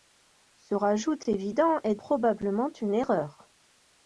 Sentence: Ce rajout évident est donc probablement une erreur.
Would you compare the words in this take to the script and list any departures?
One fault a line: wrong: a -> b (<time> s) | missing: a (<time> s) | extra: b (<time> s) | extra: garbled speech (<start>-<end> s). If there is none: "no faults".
missing: donc (2.0 s)